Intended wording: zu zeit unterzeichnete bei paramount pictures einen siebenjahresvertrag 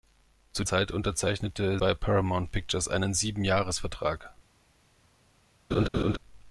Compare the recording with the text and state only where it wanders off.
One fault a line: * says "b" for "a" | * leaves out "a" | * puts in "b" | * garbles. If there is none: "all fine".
all fine